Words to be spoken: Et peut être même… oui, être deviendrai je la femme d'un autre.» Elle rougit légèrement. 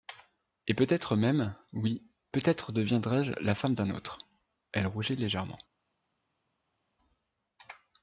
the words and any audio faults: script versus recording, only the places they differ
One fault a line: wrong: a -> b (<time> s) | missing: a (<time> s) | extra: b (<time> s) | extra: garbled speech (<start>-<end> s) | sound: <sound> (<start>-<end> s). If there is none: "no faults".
extra: peut (2.3 s)